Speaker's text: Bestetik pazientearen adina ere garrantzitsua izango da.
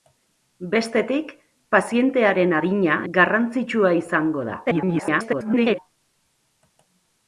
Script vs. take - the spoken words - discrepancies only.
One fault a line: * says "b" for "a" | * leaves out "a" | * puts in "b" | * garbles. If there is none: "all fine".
* leaves out "ere"
* garbles